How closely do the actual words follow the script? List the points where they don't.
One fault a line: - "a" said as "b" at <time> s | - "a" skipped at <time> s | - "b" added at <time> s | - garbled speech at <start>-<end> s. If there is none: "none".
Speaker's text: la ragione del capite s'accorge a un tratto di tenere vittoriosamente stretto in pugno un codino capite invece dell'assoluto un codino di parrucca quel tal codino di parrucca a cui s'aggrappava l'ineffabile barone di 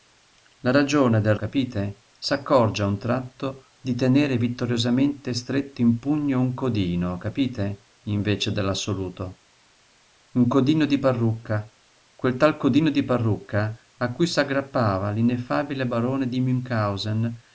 none